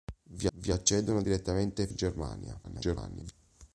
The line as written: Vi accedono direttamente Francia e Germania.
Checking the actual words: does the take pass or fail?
fail